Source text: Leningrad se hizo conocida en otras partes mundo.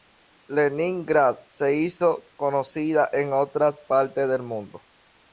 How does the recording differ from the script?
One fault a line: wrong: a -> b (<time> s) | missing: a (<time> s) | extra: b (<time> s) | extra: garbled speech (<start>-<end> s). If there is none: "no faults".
extra: del (4.3 s)